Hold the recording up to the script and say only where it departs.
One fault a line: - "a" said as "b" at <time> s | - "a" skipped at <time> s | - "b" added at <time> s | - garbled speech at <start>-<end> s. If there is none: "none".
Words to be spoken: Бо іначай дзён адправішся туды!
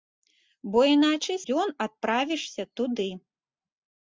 none